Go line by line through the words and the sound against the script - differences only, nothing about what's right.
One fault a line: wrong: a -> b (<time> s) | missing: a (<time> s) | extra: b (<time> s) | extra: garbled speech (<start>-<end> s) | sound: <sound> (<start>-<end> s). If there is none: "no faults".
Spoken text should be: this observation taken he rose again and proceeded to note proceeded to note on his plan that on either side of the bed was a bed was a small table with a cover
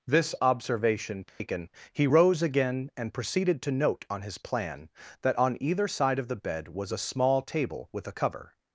sound: dropout (1.3-1.4 s)
missing: proceeded to note (4.1 s)
missing: bed was a (7.1 s)